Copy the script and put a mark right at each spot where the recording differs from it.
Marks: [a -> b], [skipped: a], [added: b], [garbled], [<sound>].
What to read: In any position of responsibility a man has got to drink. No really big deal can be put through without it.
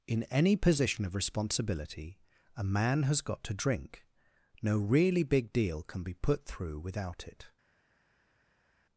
In any position of responsibility a man has got to drink. No really big deal can be put through without it.